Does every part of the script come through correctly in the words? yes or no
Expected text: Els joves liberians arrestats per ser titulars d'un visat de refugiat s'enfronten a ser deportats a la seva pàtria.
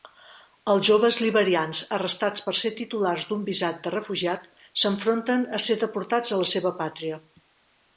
yes